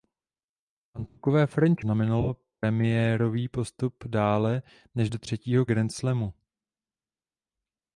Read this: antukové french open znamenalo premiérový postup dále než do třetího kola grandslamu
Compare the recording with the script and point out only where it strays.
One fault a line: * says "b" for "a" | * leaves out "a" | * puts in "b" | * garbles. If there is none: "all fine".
* leaves out "open"
* leaves out "kola"